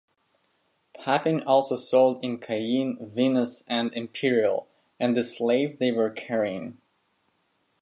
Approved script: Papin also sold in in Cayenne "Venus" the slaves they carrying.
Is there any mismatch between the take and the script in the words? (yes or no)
yes